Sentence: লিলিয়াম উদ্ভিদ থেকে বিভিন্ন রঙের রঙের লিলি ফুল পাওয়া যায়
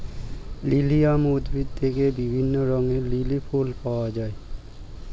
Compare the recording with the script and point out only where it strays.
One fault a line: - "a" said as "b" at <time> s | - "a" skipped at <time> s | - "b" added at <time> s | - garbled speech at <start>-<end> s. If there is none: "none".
- "রঙের" skipped at 3.0 s